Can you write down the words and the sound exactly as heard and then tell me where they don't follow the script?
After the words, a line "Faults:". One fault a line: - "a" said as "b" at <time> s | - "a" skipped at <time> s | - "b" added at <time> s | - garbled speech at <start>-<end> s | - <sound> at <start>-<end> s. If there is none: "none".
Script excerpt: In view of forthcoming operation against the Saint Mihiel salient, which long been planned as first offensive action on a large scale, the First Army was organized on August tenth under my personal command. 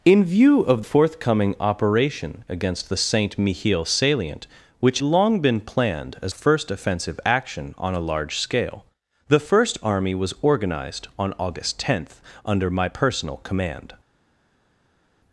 In view of forthcoming operation against the Saint Mihiel salient, which long been planned as first offensive action on a large scale, the First Army was organized on August tenth under my personal command.
Faults:
none